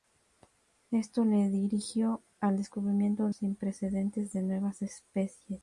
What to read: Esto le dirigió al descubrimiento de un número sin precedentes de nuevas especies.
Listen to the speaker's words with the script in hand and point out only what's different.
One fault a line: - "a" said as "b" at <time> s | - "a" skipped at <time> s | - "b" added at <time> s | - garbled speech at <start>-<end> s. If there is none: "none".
- "de un número" skipped at 3.3 s